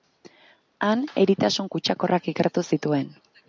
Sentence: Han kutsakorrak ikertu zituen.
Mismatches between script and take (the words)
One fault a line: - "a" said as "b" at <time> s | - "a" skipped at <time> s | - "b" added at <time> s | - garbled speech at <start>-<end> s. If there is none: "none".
- "eritasun" added at 1.2 s